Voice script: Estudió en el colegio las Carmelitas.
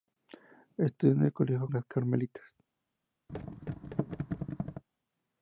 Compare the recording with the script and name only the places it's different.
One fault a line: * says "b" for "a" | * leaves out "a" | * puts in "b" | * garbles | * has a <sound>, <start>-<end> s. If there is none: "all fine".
* has a thud, 3.3-4.8 s